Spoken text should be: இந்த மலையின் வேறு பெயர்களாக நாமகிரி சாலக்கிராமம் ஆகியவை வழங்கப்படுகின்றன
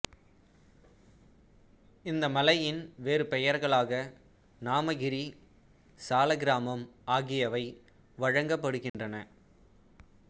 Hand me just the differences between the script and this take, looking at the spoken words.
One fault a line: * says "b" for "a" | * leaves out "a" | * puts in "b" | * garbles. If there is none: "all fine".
all fine